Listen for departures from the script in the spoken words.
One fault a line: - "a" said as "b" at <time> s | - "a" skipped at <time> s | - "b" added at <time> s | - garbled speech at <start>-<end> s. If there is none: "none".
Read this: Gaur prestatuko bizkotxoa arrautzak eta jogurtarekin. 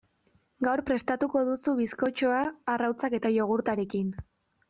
- "duzu" added at 1.5 s